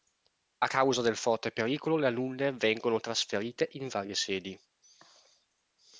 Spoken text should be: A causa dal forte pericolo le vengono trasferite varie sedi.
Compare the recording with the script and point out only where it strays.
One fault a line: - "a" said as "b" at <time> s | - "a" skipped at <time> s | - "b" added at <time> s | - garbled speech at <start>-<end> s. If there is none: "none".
- "dal" said as "del" at 1.0 s
- "alunne" added at 2.1 s
- "in" added at 3.7 s